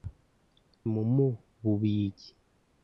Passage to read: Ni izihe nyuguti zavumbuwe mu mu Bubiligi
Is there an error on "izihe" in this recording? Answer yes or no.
yes